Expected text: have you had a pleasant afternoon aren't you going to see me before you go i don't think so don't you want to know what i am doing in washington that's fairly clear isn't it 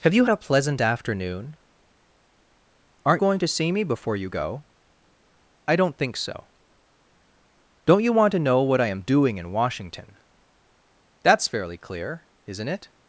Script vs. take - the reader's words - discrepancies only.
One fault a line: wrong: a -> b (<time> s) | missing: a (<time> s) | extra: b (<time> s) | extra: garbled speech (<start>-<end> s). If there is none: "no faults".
missing: had (0.2 s)
missing: you (3.2 s)